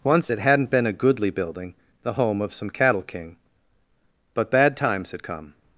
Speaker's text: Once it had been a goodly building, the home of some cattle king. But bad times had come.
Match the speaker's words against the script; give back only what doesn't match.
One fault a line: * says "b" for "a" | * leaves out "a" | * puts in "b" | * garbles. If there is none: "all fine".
* says "hadn't" for "had"